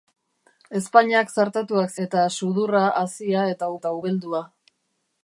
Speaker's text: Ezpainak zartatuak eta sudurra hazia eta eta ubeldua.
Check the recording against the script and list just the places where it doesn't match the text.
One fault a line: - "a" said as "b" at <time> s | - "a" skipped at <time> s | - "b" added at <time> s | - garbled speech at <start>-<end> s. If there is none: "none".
none